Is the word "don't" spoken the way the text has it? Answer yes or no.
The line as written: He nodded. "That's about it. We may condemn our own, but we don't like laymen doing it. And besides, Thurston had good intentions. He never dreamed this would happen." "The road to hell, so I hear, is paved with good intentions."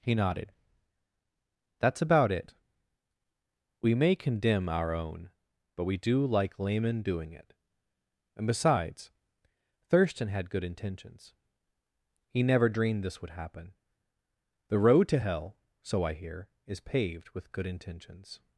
no